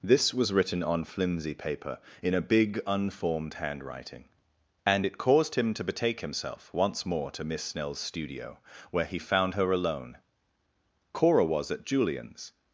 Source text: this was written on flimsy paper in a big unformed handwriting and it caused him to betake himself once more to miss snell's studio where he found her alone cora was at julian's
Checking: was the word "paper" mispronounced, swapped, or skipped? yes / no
no